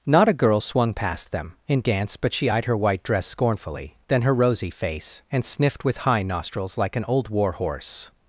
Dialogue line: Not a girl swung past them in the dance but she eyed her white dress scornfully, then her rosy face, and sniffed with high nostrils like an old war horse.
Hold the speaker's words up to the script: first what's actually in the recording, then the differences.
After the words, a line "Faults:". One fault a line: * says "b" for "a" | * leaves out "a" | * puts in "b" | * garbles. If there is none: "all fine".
Not a girl swung past them in dance but she eyed her white dress scornfully, then her rosy face, and sniffed with high nostrils like an old war horse.
Faults:
* leaves out "the"